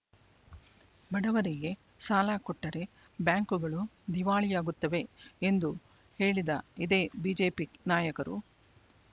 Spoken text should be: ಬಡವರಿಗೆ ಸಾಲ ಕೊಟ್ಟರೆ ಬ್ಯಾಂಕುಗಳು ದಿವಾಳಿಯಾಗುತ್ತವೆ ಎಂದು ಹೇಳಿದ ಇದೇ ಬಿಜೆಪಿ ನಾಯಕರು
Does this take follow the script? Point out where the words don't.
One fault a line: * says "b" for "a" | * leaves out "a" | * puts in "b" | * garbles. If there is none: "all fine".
all fine